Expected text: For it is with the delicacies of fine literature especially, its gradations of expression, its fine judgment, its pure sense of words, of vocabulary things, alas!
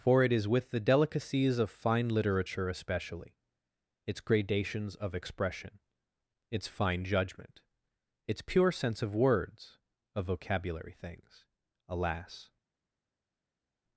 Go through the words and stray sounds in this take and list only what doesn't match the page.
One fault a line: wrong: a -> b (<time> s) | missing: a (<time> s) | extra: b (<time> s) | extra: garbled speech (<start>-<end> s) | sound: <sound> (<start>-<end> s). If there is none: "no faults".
no faults